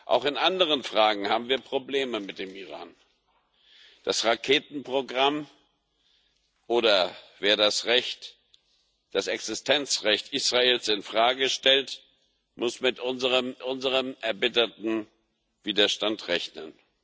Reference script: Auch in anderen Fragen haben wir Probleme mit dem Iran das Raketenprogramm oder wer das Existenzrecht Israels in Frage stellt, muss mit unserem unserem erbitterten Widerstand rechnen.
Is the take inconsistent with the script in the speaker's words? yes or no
no